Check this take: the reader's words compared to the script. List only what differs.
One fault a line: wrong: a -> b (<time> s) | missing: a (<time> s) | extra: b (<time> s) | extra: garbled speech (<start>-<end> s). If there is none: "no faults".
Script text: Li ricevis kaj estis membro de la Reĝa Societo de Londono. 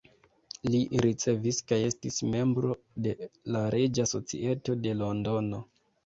no faults